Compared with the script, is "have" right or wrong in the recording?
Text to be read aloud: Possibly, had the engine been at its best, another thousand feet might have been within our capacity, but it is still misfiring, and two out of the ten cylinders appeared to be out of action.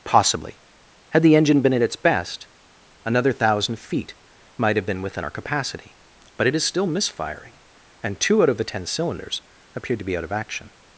right